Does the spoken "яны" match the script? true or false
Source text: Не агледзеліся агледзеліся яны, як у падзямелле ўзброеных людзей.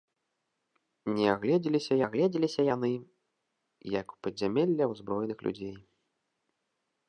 true